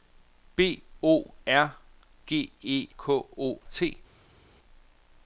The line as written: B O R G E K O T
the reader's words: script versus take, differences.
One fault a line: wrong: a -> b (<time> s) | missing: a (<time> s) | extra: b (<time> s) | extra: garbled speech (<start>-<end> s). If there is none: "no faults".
no faults